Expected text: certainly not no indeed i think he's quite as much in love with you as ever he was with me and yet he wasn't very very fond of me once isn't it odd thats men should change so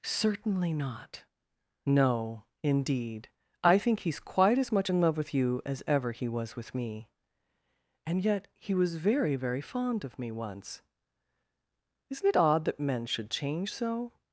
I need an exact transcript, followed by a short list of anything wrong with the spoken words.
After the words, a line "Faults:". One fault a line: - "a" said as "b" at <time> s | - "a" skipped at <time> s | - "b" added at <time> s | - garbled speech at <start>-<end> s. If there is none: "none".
certainly not no indeed i think he's quite as much in love with you as ever he was with me and yet he was very very fond of me once isn't it odd that men should change so
Faults:
- "wasn't" said as "was" at 8.7 s
- "thats" said as "that" at 12.6 s